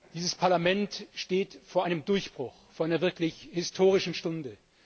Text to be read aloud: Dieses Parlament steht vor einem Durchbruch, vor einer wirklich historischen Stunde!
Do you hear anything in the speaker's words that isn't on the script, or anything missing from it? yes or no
no